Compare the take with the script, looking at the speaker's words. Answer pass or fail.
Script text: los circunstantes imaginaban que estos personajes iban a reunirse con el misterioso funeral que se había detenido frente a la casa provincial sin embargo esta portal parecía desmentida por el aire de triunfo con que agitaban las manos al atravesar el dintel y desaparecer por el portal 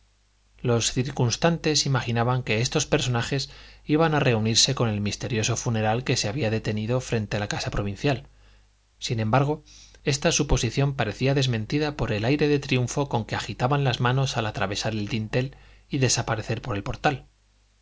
fail